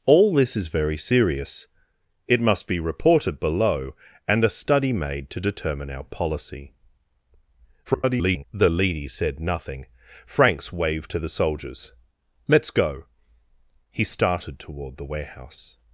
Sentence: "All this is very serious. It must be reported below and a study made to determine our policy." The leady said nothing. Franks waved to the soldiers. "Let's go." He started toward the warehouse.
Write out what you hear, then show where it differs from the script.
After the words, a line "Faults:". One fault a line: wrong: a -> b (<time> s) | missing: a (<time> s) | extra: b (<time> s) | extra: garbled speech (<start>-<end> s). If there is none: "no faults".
"All this is very serious. It must be reported below and a study made to determine our policy." [garbled] The leady said nothing. Franks waved to the soldiers. "Let's go." He started toward the warehouse.
Faults:
extra: garbled speech (7.8-8.4 s)